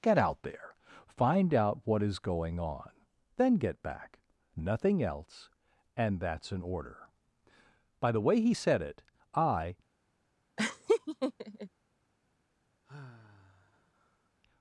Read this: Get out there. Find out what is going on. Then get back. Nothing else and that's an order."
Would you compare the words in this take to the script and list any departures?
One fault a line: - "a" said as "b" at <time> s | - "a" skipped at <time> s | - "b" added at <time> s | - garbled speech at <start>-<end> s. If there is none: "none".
- "By the way he said it I" added at 8.0 s